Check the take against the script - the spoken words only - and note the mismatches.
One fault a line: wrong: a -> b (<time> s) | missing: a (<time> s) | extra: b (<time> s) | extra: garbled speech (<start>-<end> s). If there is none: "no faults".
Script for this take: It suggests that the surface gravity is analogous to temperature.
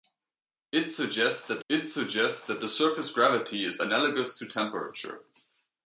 extra: it suggests that (1.7 s)